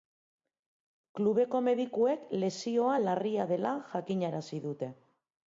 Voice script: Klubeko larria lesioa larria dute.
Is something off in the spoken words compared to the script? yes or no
yes